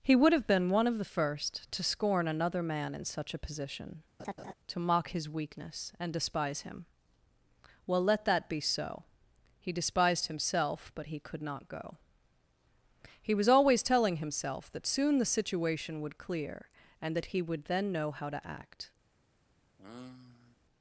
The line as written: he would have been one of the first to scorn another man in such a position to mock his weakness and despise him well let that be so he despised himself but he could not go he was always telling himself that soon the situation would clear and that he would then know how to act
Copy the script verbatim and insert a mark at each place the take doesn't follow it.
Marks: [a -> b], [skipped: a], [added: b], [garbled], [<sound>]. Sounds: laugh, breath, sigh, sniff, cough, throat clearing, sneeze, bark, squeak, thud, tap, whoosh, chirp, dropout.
he would have been one of the first to scorn another man in such a position [laugh] to mock his weakness and despise him well let that be so he despised himself but he could not go he was always telling himself that soon the situation would clear and that he would then know how to act [sigh]